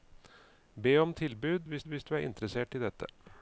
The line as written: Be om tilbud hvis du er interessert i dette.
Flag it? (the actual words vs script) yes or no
yes